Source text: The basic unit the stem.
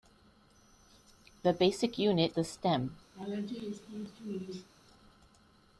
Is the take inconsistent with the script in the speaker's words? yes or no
no